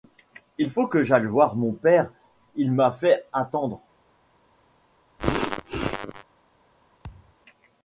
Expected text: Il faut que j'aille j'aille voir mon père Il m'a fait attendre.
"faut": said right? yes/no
yes